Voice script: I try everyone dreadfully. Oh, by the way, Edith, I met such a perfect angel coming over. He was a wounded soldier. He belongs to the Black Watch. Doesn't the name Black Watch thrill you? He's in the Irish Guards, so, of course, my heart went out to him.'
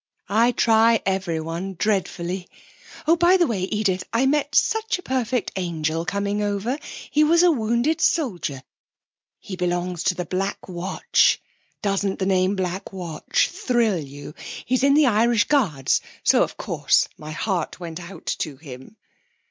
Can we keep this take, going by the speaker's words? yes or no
yes